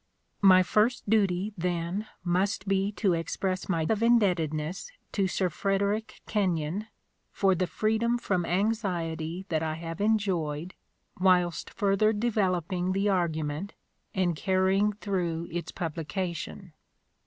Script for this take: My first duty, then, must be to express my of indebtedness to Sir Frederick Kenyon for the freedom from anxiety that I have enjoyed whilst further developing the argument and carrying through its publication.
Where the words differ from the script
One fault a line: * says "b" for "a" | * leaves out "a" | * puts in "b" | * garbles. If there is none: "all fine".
all fine